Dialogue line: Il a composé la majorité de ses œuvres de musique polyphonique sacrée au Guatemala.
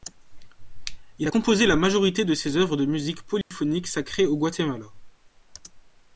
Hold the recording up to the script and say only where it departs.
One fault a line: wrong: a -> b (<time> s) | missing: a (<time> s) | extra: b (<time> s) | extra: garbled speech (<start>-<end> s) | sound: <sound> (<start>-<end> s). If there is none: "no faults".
sound: dropout (3.4-3.5 s)